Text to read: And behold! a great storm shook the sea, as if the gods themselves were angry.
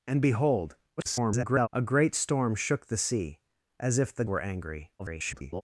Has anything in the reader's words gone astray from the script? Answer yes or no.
yes